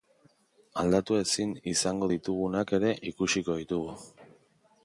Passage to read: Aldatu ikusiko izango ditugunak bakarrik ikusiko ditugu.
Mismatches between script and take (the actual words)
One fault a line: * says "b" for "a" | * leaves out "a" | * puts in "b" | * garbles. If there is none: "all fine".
* says "ezin" for "ikusiko"
* says "ere" for "bakarrik"